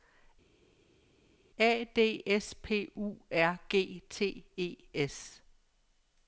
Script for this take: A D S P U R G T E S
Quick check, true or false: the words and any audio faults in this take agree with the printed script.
true